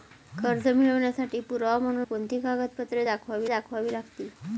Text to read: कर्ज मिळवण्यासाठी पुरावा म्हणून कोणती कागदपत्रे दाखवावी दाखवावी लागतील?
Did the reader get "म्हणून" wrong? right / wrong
right